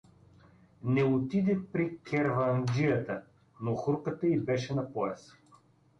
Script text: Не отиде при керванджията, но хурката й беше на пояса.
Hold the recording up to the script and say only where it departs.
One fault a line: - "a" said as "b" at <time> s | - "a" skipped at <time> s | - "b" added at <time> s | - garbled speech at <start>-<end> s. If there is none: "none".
none